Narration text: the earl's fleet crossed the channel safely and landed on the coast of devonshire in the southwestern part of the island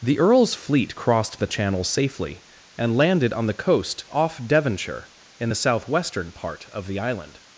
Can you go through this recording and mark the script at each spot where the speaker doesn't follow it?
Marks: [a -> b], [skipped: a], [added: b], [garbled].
the earl's fleet crossed the channel safely and landed on the coast [of -> off] devonshire in the southwestern part of the island